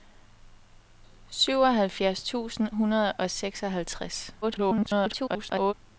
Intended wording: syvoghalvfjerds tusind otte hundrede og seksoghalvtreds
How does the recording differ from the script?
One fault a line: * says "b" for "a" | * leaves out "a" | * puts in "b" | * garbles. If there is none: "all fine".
* leaves out "otte"
* garbles